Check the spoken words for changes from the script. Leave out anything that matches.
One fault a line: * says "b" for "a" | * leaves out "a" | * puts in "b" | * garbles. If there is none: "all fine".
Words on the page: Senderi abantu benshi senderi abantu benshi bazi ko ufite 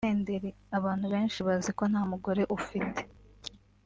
* says "bazi ko nta mugore" for "senderi abantu benshi bazi ko"